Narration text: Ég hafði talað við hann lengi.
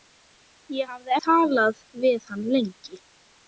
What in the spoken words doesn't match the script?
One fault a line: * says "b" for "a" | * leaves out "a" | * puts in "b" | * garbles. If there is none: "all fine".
all fine